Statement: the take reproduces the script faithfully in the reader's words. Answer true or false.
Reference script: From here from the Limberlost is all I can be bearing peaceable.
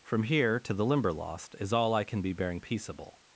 false